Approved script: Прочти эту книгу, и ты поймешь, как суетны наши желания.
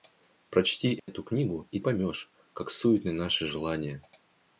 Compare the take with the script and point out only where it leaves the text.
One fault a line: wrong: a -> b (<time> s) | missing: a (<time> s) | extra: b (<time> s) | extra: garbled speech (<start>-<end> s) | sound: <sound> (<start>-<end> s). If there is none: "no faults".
sound: dropout (1.0-1.1 s)
missing: ты (1.8 s)